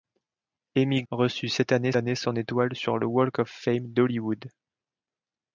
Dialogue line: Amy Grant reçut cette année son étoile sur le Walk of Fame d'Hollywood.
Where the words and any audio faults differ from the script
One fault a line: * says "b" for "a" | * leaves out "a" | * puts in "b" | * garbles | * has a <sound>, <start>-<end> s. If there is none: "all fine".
* leaves out "Grant"
* puts in "année"